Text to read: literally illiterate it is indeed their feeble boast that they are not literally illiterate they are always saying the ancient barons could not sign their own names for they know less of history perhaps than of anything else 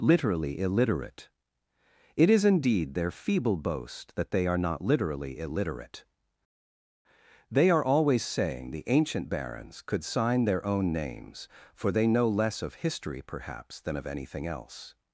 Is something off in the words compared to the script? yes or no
yes